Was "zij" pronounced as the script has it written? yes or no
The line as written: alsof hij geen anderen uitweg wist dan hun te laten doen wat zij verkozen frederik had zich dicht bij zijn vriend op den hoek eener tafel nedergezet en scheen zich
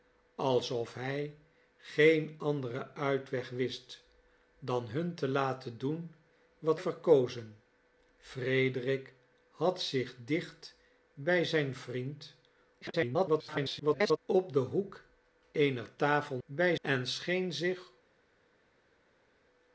no